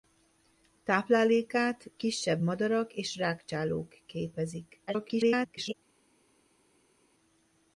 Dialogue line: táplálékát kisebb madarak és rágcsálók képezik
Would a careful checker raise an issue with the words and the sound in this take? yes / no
yes